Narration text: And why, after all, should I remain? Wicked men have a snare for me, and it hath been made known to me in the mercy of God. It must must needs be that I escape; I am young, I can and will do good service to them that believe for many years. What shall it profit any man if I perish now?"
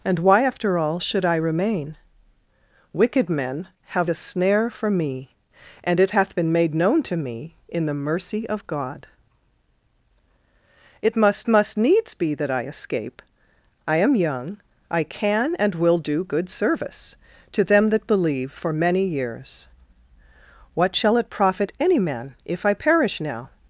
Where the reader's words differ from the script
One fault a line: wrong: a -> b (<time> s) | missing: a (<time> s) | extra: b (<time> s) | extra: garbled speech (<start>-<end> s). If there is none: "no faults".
no faults